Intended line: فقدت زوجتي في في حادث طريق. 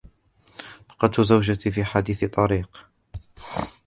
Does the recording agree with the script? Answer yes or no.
no